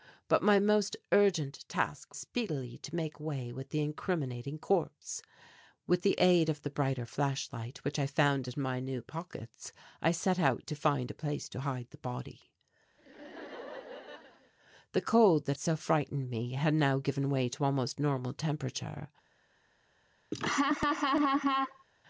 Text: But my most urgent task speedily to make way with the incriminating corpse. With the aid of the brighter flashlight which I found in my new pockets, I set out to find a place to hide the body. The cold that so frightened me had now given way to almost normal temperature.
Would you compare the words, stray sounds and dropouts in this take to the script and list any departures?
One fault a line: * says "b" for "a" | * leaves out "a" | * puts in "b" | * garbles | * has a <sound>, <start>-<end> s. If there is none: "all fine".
* has a laugh, 13.0-14.5 s
* has a laugh, 20.3-21.8 s